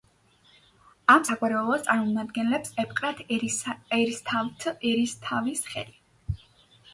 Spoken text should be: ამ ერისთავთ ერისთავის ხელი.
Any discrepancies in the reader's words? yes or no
yes